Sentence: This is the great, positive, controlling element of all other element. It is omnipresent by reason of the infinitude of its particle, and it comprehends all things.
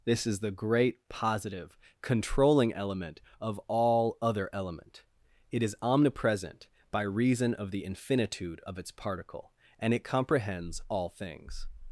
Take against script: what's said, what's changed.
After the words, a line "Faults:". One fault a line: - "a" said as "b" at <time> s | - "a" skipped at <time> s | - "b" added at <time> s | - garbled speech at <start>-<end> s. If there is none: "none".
This is the great, positive, controlling element of all other element. It is omnipresent by reason of the infinitude of its particle, and it comprehends all things.
Faults:
none